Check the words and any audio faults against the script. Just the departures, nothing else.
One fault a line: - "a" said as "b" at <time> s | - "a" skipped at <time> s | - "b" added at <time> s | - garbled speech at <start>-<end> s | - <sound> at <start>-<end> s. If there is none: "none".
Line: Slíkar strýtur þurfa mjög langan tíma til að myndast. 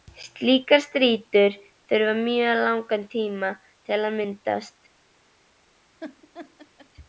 - laugh at 6.0-6.9 s